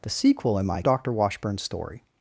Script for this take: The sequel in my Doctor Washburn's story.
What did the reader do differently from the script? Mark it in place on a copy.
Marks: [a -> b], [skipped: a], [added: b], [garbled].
The sequel in my Doctor Washburn's story.